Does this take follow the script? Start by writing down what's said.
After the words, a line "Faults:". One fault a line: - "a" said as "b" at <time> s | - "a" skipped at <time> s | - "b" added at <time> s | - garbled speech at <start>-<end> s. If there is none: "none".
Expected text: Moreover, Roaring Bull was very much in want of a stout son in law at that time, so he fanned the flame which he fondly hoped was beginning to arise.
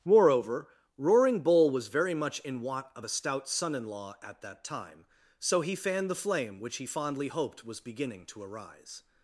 Moreover, Roaring Bull was very much in want of a stout son in law at that time, so he fanned the flame which he fondly hoped was beginning to arise.
Faults:
none